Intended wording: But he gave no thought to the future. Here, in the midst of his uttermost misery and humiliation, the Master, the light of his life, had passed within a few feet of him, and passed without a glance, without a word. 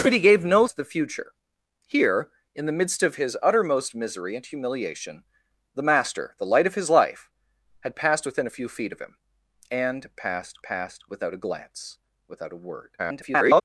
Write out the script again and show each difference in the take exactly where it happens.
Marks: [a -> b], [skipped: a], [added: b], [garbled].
But he gave no [skipped: thought] to the future. Here, in the midst of his uttermost misery and humiliation, the Master, the light of his life, had passed within a few feet of him, and passed [added: passed] without a glance, without a word. [garbled]